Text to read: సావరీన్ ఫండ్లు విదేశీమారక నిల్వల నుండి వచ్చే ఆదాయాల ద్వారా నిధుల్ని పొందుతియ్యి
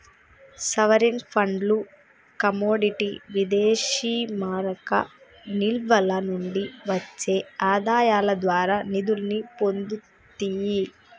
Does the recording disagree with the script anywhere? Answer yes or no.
yes